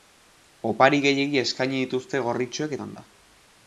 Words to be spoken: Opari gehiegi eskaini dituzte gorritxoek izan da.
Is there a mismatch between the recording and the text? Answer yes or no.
no